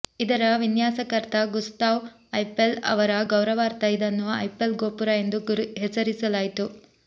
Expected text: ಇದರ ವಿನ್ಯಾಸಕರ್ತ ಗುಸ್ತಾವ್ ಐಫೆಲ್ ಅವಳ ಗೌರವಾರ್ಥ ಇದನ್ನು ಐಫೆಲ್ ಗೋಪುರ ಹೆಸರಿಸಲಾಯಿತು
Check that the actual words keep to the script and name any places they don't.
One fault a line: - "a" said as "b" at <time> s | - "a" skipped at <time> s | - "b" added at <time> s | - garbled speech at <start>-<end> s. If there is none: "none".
- "ಅವಳ" said as "ಅವರ" at 2.9 s
- "ಎಂದು" added at 5.2 s